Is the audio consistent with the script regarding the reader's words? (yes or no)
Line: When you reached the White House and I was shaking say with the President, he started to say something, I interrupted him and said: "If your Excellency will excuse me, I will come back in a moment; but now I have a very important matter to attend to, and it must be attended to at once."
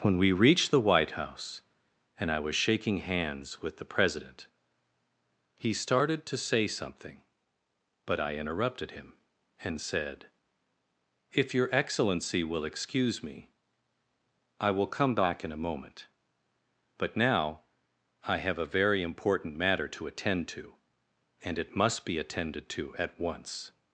no